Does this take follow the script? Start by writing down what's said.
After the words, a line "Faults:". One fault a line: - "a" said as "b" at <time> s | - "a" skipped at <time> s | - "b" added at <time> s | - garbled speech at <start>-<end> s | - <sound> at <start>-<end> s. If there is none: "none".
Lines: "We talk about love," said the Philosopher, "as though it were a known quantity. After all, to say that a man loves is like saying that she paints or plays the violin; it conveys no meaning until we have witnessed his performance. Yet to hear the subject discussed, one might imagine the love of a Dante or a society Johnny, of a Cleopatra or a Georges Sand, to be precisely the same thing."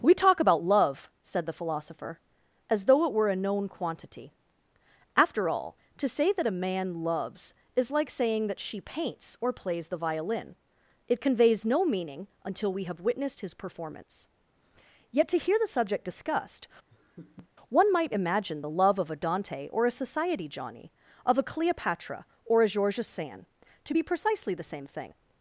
"We talk about love," said the Philosopher, "as though it were a known quantity. After all, to say that a man loves is like saying that she paints or plays the violin; it conveys no meaning until we have witnessed his performance. Yet to hear the subject discussed, one might imagine the love of a Dante or a society Johnny, of a Cleopatra or a Georges Sand, to be precisely the same thing."
Faults:
- laugh at 16.9-17.5 s